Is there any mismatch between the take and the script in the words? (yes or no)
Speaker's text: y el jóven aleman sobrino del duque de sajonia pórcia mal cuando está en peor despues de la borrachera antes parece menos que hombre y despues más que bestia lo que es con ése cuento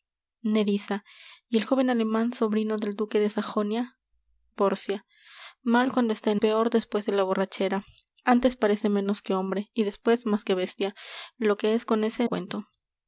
no